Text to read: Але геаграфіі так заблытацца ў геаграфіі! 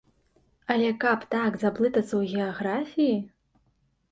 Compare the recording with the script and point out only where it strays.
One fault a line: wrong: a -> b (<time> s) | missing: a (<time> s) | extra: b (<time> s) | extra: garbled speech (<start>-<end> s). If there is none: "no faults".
wrong: геаграфіі -> каб (1.0 s)